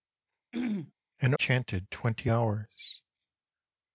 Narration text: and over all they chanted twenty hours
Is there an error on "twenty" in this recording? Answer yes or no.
no